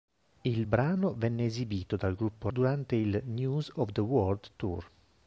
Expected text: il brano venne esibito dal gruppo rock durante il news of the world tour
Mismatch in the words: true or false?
true